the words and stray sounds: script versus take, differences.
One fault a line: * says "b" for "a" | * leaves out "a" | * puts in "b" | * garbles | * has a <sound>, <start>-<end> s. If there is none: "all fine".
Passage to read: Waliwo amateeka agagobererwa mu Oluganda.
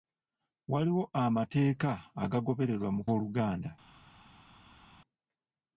all fine